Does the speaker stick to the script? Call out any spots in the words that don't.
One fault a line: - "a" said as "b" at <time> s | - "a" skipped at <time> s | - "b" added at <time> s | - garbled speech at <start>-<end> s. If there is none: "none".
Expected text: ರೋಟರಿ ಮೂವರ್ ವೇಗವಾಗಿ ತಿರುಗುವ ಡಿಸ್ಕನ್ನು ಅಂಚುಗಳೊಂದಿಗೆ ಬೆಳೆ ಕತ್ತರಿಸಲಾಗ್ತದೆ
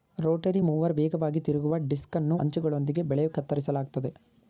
none